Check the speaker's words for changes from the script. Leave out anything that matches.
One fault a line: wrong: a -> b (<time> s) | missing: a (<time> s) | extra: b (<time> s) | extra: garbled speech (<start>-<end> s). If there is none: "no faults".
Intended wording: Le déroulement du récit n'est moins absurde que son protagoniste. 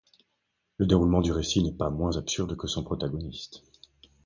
extra: pas (1.8 s)